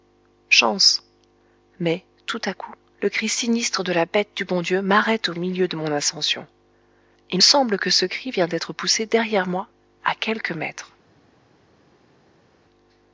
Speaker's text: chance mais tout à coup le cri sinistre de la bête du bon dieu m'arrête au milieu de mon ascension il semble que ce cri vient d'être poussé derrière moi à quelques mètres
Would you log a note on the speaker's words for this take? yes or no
no